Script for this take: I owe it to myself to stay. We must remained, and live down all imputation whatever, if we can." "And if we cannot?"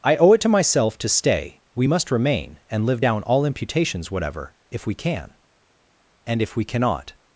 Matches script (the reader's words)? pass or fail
fail